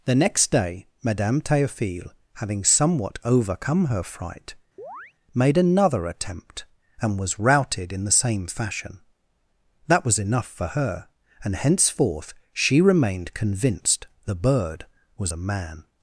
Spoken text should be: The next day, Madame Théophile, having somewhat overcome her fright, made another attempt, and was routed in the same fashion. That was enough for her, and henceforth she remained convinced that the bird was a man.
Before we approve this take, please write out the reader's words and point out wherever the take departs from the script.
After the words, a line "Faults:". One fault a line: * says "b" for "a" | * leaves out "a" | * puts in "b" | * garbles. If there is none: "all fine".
The next day, Madame Théophile, having somewhat overcome her fright, made another attempt, and was routed in the same fashion. That was enough for her, and henceforth she remained convinced the bird was a man.
Faults:
* leaves out "that"